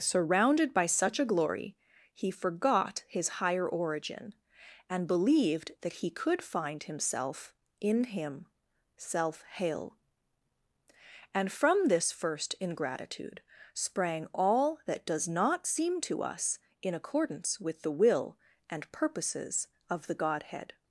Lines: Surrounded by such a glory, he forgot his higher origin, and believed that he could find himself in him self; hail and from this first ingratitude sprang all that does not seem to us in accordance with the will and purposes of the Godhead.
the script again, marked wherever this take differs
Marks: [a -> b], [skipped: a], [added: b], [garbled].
Surrounded by such a glory, he forgot his higher origin, and believed that he could find himself in him self; hail and from this first ingratitude sprang all that does not seem to us in accordance with the will and purposes of the Godhead.